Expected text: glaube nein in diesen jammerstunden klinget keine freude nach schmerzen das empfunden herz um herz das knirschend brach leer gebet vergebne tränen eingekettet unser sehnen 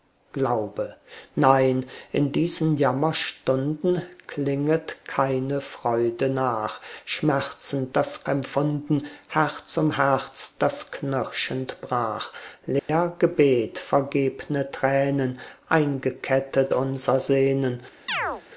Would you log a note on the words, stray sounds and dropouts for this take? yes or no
yes